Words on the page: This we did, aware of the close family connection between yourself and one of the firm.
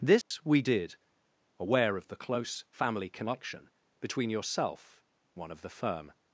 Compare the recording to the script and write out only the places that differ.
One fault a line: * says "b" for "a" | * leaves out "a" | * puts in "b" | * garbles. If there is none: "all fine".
* leaves out "and"